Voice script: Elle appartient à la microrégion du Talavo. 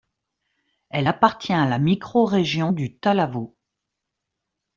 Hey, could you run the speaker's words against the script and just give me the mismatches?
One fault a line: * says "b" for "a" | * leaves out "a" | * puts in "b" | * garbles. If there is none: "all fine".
all fine